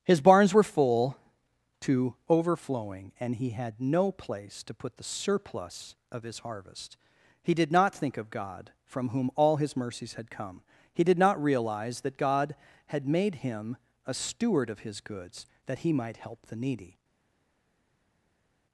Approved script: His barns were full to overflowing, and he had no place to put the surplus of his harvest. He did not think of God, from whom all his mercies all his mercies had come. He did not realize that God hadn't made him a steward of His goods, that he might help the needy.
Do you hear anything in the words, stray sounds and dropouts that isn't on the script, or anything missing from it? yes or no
yes